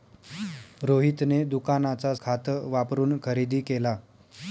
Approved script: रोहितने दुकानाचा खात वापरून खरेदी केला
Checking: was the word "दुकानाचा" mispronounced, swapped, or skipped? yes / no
no